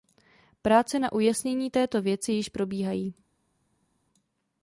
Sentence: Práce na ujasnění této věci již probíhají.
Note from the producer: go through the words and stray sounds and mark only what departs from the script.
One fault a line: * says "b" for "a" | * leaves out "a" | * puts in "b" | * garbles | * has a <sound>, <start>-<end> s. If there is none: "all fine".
all fine